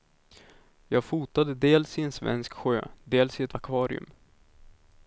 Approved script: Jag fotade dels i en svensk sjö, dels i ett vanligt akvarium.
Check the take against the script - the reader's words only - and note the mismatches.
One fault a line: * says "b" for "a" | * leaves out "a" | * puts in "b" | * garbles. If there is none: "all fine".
* leaves out "vanligt"